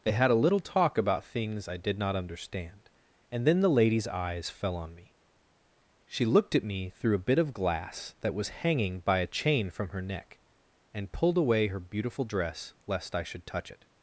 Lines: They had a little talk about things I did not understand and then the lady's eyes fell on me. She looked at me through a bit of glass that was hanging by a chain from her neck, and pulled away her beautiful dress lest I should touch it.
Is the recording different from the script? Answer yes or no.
no